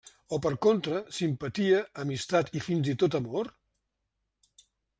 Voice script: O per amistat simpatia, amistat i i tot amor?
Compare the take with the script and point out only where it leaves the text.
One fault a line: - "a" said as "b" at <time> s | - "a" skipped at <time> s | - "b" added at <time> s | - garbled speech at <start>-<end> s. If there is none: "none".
- "amistat" said as "contra" at 0.7 s
- "fins" added at 2.7 s